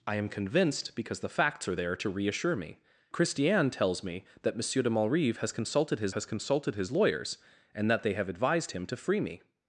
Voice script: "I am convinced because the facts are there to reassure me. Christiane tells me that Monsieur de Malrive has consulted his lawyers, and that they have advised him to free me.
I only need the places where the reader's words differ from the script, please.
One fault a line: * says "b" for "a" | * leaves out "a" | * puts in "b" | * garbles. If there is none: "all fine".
* puts in "has consulted his"